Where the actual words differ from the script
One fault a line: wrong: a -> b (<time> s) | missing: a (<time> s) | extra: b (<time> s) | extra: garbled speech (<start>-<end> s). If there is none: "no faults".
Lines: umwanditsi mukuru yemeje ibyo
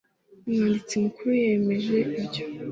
no faults